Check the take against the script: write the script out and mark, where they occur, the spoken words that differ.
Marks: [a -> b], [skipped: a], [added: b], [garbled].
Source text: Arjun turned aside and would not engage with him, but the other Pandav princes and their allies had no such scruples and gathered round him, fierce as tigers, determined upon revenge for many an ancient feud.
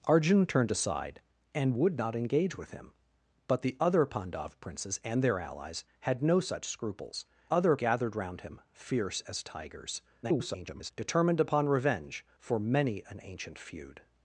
Arjun turned aside and would not engage with him, but the other Pandav princes and their allies had no such scruples [and -> other] gathered round him, fierce as tigers, [garbled] determined upon revenge for many an ancient feud.